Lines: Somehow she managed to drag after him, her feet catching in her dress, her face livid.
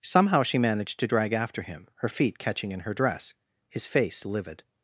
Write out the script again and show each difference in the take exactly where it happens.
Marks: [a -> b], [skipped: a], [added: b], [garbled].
Somehow she managed to drag after him, her feet catching in her dress, [her -> his] face livid.